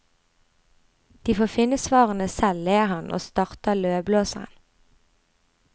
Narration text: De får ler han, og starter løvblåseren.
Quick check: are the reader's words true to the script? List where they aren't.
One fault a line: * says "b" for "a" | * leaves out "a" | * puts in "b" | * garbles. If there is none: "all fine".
* puts in "finne svarene selv"